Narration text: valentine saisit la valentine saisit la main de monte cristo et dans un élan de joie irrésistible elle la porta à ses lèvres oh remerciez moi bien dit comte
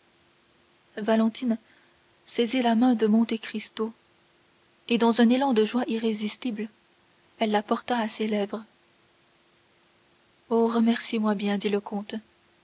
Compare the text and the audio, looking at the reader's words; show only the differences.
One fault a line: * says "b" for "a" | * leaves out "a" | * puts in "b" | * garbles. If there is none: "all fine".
* leaves out "valentine saisit la"
* puts in "le"